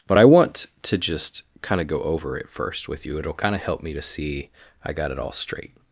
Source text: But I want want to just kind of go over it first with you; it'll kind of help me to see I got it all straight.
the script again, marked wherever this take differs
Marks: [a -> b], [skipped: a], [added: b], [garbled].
But I want [skipped: want] to just kind of go over it first with you; it'll kind of help me to see I got it all straight.